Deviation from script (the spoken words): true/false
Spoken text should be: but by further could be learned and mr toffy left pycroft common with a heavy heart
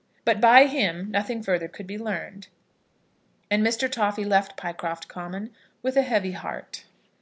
true